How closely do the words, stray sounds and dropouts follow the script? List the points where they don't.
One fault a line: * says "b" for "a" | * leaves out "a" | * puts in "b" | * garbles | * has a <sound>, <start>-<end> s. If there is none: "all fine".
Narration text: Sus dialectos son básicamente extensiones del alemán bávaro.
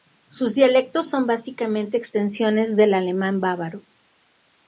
all fine